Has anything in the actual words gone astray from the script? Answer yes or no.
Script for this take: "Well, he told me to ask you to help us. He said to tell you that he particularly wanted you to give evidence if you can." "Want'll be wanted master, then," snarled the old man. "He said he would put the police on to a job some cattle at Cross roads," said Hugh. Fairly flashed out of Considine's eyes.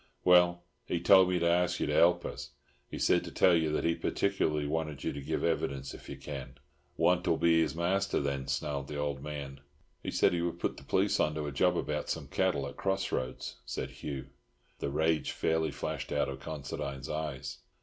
yes